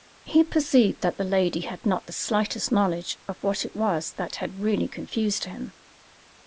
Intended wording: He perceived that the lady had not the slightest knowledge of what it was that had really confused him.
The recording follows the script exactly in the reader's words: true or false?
true